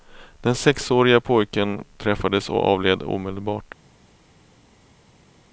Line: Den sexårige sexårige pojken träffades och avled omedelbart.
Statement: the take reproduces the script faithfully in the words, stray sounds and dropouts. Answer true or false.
false